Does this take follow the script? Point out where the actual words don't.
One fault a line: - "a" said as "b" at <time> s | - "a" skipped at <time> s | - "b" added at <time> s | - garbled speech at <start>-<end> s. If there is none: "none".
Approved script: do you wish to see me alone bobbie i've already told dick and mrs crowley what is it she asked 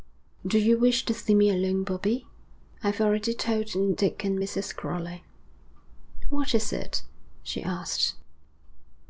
none